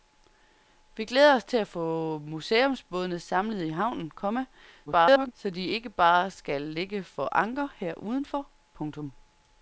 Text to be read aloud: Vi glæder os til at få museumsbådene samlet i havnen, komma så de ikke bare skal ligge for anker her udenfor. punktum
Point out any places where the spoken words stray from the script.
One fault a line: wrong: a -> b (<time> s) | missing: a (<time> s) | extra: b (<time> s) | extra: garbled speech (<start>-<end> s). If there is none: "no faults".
extra: garbled speech (4.9-5.3 s)